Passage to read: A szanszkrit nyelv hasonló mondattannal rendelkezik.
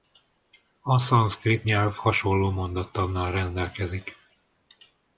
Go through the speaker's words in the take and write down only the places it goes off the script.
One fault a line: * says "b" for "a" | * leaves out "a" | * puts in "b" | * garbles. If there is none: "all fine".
all fine